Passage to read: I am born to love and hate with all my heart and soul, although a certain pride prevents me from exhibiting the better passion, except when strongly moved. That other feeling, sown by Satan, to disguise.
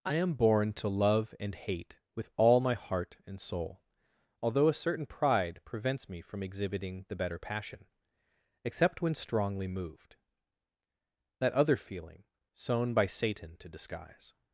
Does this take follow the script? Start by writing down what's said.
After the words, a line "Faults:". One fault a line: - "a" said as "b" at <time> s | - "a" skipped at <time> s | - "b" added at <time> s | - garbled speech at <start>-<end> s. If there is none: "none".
I am born to love and hate with all my heart and soul, although a certain pride prevents me from exhibiting the better passion, except when strongly moved. That other feeling, sown by Satan, to disguise.
Faults:
none